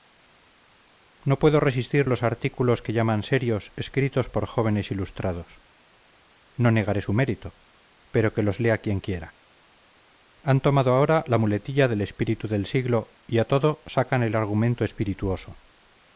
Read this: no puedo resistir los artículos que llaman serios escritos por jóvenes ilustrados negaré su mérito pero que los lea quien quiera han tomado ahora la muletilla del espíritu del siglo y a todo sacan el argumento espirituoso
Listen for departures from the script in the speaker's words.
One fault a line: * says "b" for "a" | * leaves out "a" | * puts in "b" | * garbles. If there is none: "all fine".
* puts in "no"